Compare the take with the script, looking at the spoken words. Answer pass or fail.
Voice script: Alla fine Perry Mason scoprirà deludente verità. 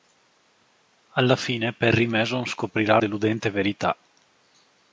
pass